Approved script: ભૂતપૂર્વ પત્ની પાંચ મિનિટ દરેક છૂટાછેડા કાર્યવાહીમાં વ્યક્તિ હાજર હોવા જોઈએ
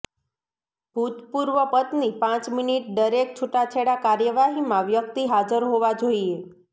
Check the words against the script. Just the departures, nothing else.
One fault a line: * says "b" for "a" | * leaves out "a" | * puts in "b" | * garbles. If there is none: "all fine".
all fine